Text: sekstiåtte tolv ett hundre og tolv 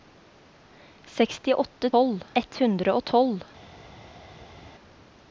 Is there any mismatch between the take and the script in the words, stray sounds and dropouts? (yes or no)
no